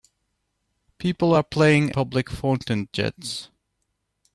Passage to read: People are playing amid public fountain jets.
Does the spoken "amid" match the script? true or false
false